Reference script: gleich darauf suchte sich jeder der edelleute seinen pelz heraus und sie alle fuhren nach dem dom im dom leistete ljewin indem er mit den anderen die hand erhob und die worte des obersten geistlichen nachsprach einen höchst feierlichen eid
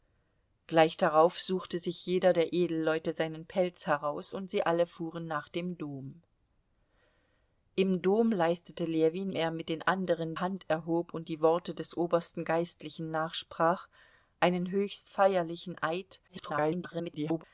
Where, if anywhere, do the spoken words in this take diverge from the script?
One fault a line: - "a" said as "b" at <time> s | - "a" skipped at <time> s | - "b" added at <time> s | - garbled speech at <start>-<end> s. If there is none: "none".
- "indem" skipped at 9.3 s
- "die" skipped at 10.3 s
- garbled speech at 16.3-17.4 s